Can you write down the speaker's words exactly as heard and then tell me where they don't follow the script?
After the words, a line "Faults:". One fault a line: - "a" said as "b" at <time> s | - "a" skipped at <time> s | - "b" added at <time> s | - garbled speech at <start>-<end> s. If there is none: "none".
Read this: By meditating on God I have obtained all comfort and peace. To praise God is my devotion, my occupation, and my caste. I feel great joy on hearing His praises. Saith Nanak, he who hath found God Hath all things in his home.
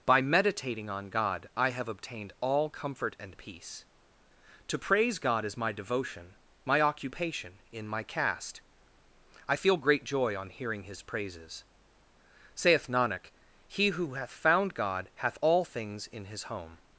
By meditating on God I have obtained all comfort and peace. To praise God is my devotion, my occupation, in my caste. I feel great joy on hearing His praises. Saith Nanak, he who hath found God Hath all things in his home.
Faults:
- "and" said as "in" at 7.7 s